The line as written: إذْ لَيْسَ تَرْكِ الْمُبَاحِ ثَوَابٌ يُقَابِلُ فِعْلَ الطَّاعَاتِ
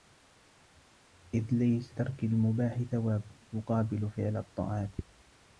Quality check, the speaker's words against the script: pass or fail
pass